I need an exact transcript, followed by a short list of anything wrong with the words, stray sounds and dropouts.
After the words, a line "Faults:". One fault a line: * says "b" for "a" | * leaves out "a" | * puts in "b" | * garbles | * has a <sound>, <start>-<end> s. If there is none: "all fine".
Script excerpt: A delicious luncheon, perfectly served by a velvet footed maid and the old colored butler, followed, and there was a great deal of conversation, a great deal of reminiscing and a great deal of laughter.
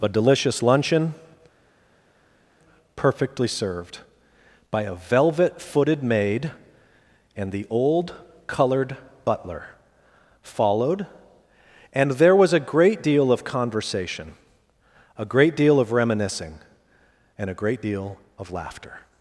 A delicious luncheon, perfectly served by a velvet footed maid and the old colored butler, followed, and there was a great deal of conversation, a great deal of reminiscing and a great deal of laughter.
Faults:
all fine